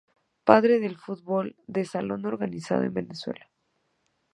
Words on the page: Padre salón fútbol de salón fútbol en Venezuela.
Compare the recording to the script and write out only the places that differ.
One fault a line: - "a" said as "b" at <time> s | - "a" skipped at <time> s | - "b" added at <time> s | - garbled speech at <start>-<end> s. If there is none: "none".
- "salón" said as "del" at 0.8 s
- "fútbol" said as "organizado" at 2.2 s